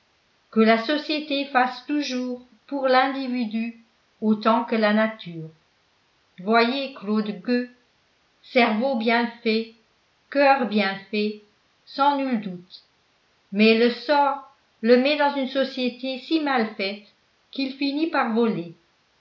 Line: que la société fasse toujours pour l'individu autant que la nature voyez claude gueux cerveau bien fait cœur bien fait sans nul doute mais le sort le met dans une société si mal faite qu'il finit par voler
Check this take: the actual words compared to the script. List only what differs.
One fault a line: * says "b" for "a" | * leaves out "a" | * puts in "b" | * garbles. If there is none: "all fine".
all fine